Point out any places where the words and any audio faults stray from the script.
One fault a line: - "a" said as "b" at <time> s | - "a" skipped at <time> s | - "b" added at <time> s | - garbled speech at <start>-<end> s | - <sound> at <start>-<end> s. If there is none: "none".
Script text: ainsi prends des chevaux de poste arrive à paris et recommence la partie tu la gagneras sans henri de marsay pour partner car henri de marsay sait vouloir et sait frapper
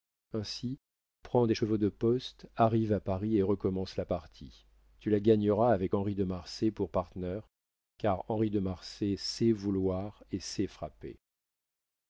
- "sans" said as "avec" at 5.7 s